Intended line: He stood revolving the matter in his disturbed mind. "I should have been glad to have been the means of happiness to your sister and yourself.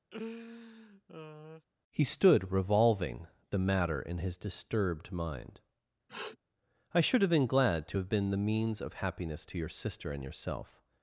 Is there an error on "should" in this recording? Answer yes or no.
no